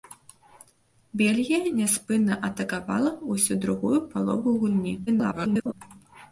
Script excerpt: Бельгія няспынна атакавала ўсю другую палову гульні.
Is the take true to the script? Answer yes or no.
no